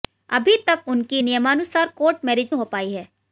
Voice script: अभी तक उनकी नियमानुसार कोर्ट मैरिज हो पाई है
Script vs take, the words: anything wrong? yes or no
no